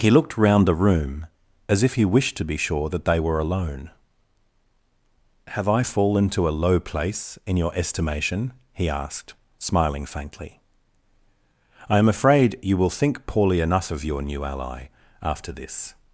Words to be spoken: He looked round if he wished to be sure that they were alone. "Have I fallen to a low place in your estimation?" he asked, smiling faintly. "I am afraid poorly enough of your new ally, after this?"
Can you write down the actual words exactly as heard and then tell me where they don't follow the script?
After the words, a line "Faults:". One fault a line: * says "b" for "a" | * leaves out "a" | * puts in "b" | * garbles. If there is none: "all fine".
He looked round the room, as if he wished to be sure that they were alone. "Have I fallen to a low place in your estimation?" he asked, smiling faintly. "I am afraid you will think poorly enough of your new ally, after this?"
Faults:
* puts in "the room as"
* puts in "you will think"